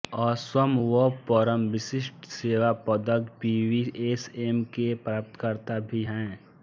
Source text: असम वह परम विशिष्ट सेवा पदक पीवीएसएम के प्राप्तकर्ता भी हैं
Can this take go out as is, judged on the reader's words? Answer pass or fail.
pass